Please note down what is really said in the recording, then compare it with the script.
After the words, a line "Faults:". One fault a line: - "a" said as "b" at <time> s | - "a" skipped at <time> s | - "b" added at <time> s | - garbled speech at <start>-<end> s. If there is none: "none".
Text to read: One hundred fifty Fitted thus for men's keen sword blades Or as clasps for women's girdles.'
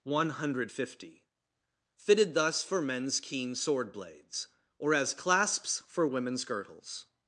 One hundred fifty Fitted thus for men's keen sword blades Or as clasps for women's girdles.'
Faults:
none